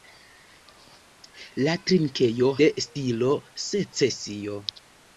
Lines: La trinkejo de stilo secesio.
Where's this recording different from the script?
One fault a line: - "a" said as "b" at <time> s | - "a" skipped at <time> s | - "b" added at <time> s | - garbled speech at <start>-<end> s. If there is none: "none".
none